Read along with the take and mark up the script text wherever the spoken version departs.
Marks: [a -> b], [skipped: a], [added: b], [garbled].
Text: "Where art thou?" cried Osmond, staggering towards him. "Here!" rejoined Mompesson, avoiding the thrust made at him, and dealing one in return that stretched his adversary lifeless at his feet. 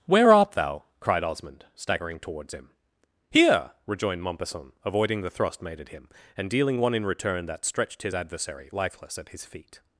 "Where art thou?" cried Osmond, staggering towards him. "Here!" rejoined Mompesson, avoiding the thrust made at him, and dealing one in return that stretched his adversary lifeless at his feet.